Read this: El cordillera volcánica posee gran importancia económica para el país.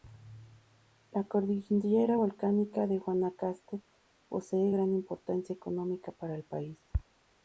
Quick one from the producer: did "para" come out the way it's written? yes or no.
yes